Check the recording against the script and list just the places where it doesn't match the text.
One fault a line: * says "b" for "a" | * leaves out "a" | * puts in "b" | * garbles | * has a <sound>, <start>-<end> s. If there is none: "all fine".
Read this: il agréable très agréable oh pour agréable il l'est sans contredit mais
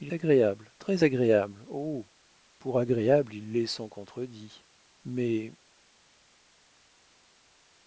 all fine